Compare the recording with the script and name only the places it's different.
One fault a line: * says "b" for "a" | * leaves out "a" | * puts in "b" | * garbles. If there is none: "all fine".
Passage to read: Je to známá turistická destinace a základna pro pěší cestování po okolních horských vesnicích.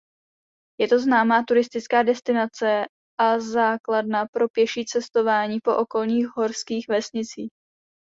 all fine